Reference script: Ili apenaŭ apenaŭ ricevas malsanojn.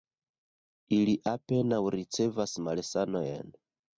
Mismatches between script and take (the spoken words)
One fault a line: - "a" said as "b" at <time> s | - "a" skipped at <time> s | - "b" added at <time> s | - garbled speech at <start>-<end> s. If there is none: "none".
- "apenaŭ" skipped at 1.8 s